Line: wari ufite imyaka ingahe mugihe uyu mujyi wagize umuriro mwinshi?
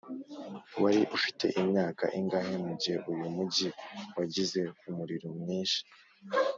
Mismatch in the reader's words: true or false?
false